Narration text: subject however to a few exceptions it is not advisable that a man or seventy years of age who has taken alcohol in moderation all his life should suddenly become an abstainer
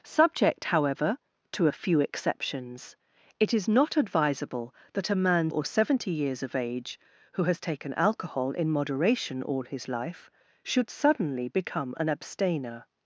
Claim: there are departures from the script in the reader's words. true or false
false